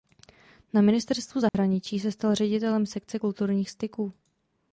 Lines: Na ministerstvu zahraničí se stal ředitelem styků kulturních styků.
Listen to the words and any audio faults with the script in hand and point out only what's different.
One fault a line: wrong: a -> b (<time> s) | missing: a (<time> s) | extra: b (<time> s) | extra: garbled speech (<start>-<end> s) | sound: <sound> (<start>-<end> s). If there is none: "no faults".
sound: dropout (1.5-1.5 s)
wrong: styků -> sekce (2.8 s)